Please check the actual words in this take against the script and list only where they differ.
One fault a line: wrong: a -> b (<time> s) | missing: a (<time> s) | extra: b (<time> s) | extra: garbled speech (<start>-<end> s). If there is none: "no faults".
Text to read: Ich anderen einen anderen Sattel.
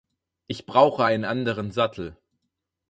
wrong: anderen -> brauche (0.7 s)